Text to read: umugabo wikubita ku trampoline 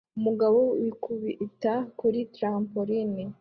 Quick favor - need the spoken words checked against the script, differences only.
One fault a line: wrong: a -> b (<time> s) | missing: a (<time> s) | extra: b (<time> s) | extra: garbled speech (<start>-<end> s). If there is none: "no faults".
wrong: ku -> kuri (2.0 s)